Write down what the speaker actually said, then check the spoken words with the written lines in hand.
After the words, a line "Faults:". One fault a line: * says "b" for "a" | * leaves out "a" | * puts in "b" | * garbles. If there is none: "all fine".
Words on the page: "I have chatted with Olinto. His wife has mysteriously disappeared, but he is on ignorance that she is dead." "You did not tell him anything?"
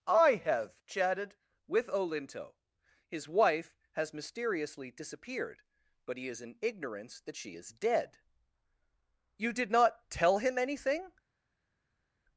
"I have chatted with Olinto. His wife has mysteriously disappeared, but he is in ignorance that she is dead." "You did not tell him anything?"
Faults:
* says "in" for "on"